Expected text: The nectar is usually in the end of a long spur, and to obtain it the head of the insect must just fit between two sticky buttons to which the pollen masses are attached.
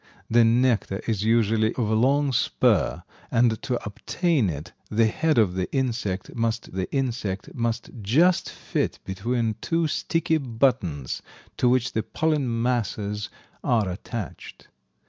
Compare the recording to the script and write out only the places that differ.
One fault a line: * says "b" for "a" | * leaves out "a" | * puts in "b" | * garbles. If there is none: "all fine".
* leaves out "in the end"
* puts in "the insect must"